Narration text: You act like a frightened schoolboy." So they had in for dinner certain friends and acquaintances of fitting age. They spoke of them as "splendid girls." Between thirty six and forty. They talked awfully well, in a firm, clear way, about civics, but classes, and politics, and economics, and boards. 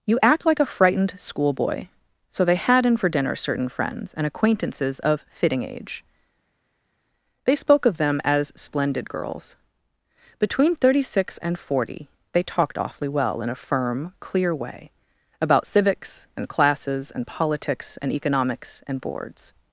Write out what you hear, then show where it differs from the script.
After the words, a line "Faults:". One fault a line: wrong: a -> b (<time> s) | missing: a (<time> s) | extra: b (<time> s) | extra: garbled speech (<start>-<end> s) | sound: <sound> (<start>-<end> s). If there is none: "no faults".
You act like a frightened schoolboy." So they had in for dinner certain friends and acquaintances of fitting age. They spoke of them as "splendid girls." Between thirty six and forty. They talked awfully well, in a firm, clear way, about civics, and classes, and politics, and economics, and boards.
Faults:
wrong: but -> and (16.4 s)